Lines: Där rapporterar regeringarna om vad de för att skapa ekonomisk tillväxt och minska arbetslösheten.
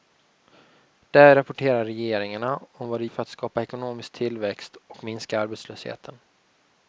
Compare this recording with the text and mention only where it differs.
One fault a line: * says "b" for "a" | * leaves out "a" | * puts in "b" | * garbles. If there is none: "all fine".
all fine